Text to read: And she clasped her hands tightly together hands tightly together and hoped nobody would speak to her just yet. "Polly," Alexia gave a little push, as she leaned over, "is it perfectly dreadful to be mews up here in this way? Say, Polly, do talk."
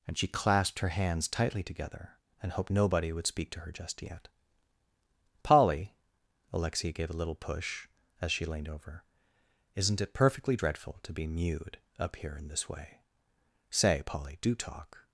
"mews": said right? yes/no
no